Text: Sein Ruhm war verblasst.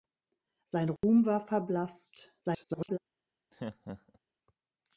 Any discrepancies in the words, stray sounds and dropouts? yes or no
yes